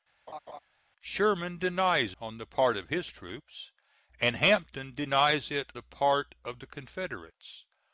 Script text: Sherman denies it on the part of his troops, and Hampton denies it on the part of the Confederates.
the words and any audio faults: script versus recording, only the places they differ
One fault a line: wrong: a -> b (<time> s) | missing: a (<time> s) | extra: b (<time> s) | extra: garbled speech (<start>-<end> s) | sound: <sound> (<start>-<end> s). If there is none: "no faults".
sound: laugh (0.3-0.6 s)
missing: it (2.2 s)
missing: on (5.7 s)